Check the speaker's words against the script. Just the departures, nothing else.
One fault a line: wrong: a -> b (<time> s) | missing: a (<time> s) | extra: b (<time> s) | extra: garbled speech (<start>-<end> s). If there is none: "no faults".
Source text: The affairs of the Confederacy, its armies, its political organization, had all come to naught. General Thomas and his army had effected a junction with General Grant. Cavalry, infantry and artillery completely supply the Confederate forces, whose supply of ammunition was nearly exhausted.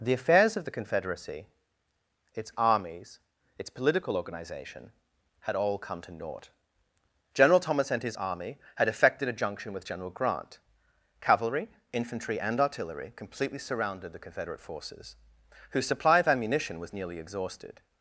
wrong: supply -> surrounded (13.6 s)